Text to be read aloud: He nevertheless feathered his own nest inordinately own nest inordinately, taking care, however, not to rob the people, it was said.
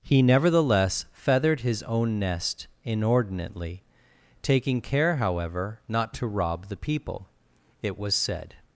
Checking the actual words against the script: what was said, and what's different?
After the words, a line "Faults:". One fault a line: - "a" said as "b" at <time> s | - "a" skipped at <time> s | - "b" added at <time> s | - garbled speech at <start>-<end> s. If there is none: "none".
He nevertheless feathered his own nest inordinately, taking care, however, not to rob the people, it was said.
Faults:
- "own nest inordinately" skipped at 3.8 s